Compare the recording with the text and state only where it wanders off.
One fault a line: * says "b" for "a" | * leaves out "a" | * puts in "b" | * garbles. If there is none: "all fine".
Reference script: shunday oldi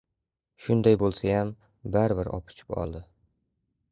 * puts in "bo‘lsayam baribir opichib"